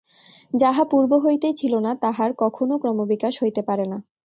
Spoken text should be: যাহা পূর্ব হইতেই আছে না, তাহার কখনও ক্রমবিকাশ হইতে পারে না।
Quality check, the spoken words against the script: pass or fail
fail